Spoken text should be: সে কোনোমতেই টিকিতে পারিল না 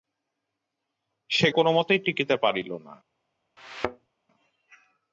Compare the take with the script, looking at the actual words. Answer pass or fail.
pass